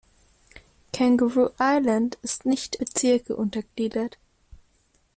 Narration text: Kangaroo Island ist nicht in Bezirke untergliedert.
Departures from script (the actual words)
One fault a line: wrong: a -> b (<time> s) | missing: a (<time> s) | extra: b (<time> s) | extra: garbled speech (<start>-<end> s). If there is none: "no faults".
missing: in (2.8 s)